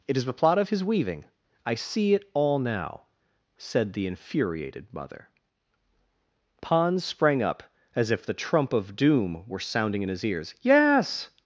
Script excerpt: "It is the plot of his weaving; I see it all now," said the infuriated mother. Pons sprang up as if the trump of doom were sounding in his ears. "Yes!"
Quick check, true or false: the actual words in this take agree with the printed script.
true